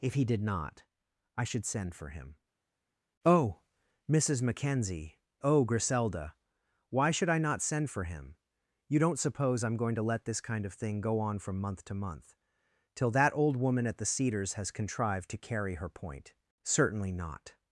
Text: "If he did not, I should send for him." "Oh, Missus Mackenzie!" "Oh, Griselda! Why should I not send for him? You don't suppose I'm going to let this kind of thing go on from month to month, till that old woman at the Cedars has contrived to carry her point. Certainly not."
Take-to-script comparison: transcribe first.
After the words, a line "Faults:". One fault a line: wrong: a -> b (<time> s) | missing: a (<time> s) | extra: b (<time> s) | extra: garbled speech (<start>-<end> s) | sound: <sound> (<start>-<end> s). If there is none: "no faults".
"If he did not, I should send for him." "Oh, Missus Mackenzie!" "Oh, Griselda! Why should I not send for him? You don't suppose I'm going to let this kind of thing go on from month to month, till that old woman at the Cedars has contrived to carry her point. Certainly not."
Faults:
no faults